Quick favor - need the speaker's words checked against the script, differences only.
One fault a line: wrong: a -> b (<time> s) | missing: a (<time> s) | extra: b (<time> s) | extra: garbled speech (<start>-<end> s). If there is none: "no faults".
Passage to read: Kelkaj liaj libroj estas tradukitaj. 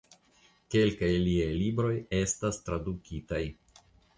no faults